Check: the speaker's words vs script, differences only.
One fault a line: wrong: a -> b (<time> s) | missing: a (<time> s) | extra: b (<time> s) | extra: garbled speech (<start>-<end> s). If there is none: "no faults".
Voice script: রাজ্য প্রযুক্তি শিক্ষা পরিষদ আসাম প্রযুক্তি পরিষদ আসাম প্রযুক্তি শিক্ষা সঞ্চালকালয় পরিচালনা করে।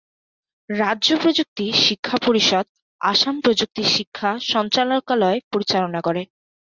missing: পরিষদ আসাম প্রযুক্তি (3.8 s)